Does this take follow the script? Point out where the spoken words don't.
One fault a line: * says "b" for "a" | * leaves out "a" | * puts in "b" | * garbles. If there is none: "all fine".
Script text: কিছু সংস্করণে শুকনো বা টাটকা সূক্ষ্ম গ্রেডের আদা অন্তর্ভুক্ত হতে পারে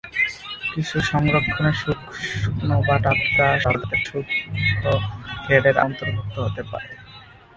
* garbles
* leaves out "আদা"